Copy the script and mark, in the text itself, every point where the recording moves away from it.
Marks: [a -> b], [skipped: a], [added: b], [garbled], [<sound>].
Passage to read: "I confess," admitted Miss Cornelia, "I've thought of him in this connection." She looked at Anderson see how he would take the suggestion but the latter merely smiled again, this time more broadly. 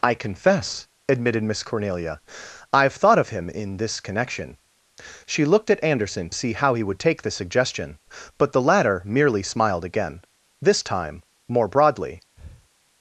"I confess," admitted Miss Cornelia, "I've thought of him in this connection." She looked at Anderson see how he would take the suggestion but the latter merely smiled again, this time more broadly. [breath]